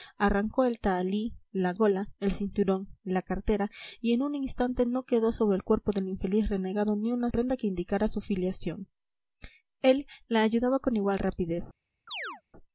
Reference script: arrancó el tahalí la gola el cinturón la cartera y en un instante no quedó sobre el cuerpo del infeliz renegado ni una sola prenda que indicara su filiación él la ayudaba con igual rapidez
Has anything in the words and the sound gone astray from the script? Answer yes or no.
yes